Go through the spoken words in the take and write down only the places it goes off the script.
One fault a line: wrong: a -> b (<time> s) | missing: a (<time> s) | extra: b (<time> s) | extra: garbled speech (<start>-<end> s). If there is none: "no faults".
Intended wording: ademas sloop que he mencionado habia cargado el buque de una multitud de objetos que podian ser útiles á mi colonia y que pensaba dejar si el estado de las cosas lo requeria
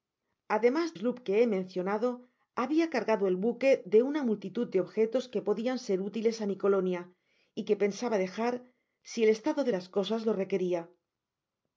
no faults